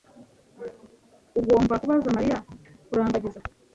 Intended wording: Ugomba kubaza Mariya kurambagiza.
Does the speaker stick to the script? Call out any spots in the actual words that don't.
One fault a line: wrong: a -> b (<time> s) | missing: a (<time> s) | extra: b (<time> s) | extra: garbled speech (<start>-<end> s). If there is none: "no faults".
no faults